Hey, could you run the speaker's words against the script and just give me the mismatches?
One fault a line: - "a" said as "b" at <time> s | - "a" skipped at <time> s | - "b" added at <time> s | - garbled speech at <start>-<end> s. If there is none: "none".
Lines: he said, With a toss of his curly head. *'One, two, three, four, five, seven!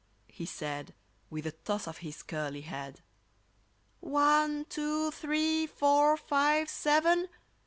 none